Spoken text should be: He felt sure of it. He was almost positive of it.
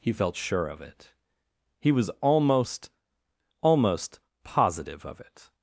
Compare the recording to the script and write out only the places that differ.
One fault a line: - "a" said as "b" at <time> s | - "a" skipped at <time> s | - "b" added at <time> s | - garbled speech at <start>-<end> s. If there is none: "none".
- "almost" added at 3.6 s